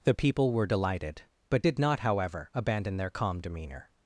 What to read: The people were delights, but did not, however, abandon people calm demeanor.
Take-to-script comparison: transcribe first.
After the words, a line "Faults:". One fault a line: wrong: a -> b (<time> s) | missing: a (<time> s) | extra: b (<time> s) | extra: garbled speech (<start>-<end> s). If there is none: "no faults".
The people were delighted, but did not, however, abandon their calm demeanor.
Faults:
wrong: delights -> delighted (0.7 s)
wrong: people -> their (3.0 s)